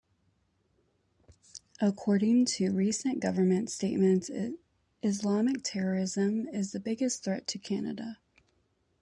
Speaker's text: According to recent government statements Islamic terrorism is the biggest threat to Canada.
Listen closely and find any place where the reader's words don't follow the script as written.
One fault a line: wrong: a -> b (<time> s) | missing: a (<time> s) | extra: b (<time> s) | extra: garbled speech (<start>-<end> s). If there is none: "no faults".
no faults